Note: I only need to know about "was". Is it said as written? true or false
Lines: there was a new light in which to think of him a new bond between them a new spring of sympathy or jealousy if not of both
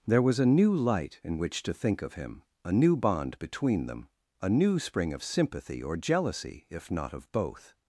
true